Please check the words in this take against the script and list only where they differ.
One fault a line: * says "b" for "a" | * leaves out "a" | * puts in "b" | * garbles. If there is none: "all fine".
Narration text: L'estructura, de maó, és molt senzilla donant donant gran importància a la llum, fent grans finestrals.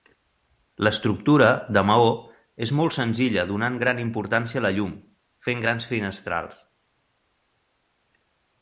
* leaves out "donant"